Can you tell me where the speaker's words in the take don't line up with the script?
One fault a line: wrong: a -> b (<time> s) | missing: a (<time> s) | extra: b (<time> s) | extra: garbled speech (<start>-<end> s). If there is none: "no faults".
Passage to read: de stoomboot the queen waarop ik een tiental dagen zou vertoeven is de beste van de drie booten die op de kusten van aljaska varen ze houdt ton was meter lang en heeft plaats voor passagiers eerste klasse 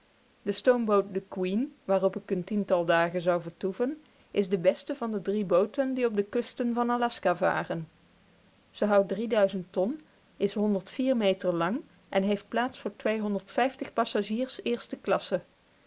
wrong: was -> is (10.4 s)